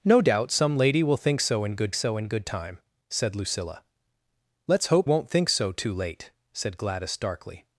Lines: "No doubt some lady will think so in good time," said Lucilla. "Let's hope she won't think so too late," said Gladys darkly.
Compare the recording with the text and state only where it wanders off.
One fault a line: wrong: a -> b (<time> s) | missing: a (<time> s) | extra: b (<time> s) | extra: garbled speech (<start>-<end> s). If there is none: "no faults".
extra: so in good (1.9 s)
missing: she (5.1 s)